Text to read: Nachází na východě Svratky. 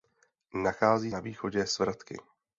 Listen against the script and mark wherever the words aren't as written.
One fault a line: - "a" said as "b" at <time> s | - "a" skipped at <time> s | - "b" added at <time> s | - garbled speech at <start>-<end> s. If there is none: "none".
none